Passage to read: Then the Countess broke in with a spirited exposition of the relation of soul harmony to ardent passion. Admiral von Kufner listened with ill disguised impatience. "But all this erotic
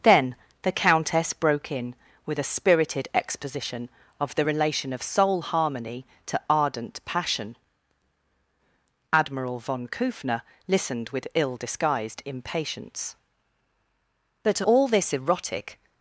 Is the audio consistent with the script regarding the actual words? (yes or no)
yes